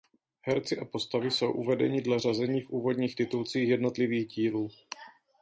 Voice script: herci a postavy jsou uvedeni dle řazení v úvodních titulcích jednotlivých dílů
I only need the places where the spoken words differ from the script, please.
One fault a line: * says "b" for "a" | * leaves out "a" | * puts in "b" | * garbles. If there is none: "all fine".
all fine